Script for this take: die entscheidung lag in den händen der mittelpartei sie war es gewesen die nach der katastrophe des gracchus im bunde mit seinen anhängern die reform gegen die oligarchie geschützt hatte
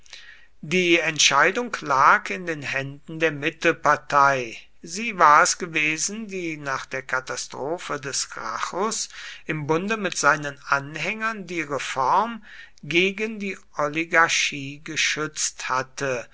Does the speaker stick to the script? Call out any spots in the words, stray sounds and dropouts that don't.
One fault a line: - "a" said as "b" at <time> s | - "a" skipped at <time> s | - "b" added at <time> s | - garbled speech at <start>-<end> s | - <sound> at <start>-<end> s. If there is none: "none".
none